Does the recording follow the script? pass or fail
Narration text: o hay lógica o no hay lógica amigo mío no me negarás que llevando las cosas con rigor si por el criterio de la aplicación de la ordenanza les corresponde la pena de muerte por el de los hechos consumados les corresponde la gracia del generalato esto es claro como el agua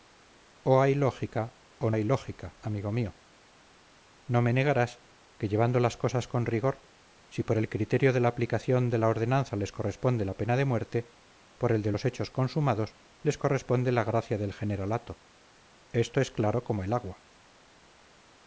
fail